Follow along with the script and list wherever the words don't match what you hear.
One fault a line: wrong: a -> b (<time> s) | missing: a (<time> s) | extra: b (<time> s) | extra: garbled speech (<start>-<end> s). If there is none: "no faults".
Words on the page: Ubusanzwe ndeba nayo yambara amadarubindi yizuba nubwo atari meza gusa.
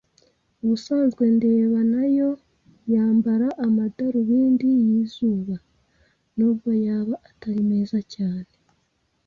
extra: yaba (6.8 s)
wrong: gusa -> cyane (8.1 s)